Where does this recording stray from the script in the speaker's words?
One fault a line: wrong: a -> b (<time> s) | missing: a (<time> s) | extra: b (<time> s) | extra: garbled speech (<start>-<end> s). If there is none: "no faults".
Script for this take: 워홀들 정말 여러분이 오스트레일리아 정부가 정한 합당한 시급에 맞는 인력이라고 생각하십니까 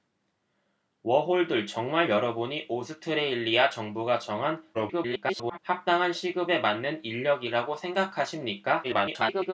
extra: garbled speech (4.7-5.6 s)
extra: garbled speech (8.8-9.5 s)